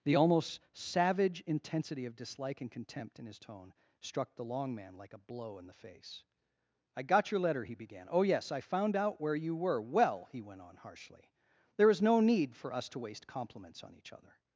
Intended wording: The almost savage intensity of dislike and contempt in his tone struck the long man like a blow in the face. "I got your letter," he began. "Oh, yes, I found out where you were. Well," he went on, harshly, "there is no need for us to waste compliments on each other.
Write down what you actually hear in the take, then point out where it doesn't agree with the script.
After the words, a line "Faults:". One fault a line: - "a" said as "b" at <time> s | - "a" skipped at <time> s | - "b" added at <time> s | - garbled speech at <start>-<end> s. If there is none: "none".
The almost savage intensity of dislike and contempt in his tone struck the long man like a blow in the face. "I got your letter," he began. "Oh, yes, I found out where you were. Well," he went on, harshly, "there is no need for us to waste compliments on each other.
Faults:
none